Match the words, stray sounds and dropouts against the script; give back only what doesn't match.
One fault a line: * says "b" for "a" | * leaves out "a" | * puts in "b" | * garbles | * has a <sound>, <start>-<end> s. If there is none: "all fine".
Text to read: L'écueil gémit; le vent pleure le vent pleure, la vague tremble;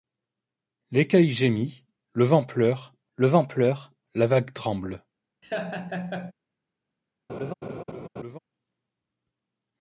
* has a laugh, 5.4-6.3 s
* has a laugh, 7.3-8.4 s